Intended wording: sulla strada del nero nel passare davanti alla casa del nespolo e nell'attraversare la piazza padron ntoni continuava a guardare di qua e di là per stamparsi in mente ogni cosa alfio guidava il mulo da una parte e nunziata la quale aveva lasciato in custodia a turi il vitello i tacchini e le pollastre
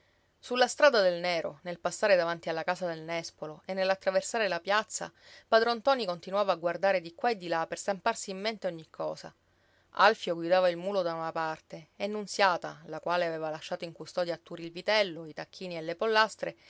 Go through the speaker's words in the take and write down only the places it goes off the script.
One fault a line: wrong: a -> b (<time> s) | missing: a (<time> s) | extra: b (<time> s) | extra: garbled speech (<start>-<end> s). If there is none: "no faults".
no faults